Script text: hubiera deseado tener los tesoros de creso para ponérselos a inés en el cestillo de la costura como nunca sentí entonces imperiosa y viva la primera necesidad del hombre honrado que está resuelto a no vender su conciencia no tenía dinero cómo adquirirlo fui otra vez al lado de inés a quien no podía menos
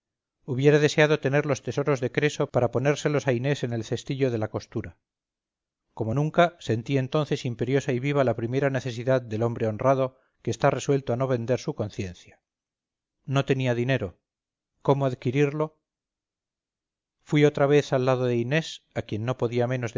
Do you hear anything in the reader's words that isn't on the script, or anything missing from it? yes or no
no